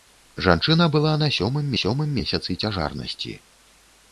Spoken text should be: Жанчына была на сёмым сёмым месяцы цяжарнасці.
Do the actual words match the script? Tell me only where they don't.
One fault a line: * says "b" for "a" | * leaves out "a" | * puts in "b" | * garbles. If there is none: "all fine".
all fine